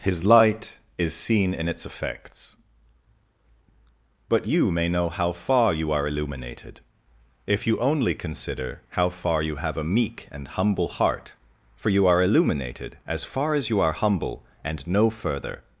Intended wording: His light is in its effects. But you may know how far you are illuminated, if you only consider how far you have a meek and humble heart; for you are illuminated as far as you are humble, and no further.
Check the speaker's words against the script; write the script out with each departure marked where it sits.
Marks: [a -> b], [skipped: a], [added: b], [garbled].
His light is [added: seen] in its effects. But you may know how far you are illuminated, if you only consider how far you have a meek and humble heart; for you are illuminated as far as you are humble, and no further.